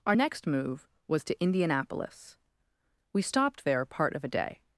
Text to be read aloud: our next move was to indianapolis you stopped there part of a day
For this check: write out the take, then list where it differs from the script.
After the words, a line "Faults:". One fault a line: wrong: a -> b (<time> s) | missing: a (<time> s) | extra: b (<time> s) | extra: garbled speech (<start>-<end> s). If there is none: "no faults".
our next move was to indianapolis we stopped there part of a day
Faults:
wrong: you -> we (3.1 s)